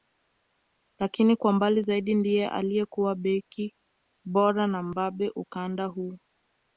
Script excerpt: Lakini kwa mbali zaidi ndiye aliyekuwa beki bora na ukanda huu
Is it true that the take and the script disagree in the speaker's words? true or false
true